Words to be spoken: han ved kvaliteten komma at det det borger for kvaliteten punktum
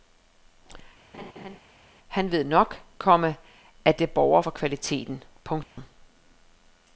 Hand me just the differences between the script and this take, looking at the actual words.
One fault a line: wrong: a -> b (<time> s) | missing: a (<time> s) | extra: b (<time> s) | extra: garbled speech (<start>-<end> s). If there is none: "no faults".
wrong: kvaliteten -> nok (2.4 s)
missing: det (4.1 s)